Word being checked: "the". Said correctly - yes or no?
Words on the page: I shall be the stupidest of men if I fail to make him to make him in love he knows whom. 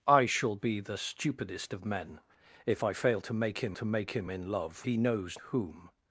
yes